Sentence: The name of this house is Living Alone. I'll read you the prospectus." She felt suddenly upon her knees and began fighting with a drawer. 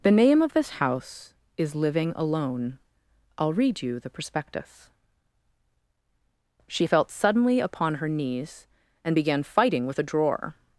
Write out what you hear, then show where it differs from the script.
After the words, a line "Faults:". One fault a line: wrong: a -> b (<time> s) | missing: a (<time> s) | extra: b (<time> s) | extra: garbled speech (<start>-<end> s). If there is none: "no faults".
The name of this house is Living Alone. I'll read you the prospectus." She felt suddenly upon her knees and began fighting with a drawer.
Faults:
no faults